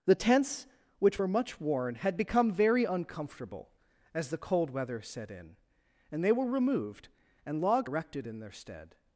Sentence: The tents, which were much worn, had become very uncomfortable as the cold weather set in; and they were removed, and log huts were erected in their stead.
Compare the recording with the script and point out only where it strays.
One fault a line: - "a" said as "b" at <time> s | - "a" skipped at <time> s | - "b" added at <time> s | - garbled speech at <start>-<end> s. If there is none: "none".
- "huts were" skipped at 7.9 s